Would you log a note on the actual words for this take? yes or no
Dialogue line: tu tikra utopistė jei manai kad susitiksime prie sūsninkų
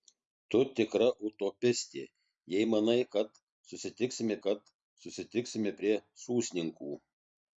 yes